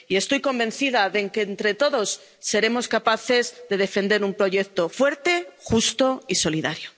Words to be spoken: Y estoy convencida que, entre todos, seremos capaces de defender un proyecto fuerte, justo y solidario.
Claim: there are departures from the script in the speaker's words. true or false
true